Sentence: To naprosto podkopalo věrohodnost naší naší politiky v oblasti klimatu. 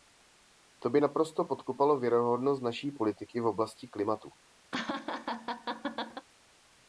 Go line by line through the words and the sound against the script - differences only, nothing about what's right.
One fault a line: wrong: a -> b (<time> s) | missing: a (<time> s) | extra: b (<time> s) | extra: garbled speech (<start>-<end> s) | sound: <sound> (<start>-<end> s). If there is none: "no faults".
extra: by (0.9 s)
missing: naší (2.9 s)
sound: laugh (4.7-6.3 s)